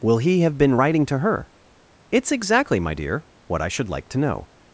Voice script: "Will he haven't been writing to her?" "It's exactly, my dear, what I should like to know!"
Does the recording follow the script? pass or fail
fail